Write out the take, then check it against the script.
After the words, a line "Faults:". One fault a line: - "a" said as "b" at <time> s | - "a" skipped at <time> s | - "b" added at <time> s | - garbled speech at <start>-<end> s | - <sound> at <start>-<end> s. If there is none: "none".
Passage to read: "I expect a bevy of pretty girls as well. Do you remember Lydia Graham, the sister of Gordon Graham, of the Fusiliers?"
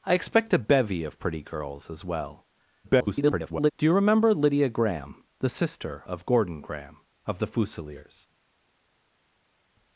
"I expect a bevy of pretty girls as well. [garbled] Do you remember Lydia Graham, the sister of Gordon Graham, of the Fusiliers?"
Faults:
- garbled speech at 2.8-3.7 s